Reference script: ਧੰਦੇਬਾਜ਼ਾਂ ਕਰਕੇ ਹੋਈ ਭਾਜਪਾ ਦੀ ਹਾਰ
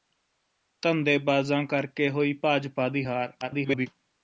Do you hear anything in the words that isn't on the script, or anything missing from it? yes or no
yes